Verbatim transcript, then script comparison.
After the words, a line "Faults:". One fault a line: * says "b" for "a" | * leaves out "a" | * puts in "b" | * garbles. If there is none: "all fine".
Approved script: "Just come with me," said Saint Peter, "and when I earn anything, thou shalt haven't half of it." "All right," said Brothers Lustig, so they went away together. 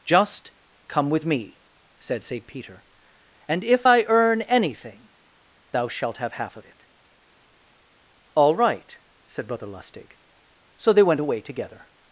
"Just come with me," said Saint Peter, "and if I earn anything, thou shalt have half of it." "All right," said Brother Lustig, so they went away together.
Faults:
* says "if" for "when"
* says "have" for "haven't"
* says "Brother" for "Brothers"